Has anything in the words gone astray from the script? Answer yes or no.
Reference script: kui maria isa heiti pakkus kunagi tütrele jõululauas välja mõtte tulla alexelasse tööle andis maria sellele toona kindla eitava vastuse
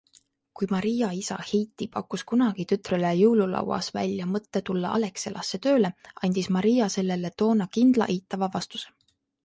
no